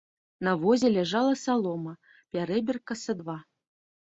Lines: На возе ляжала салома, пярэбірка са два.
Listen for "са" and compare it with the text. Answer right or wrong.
right